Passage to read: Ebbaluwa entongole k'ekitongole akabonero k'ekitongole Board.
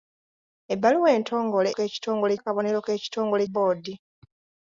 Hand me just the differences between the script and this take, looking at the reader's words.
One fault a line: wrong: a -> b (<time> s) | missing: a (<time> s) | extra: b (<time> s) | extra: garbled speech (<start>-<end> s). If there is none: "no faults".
no faults